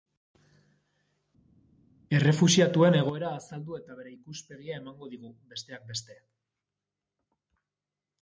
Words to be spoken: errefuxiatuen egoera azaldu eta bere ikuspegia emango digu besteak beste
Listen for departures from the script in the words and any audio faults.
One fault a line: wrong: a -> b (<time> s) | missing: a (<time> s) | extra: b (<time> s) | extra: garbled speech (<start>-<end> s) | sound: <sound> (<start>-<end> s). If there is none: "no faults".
no faults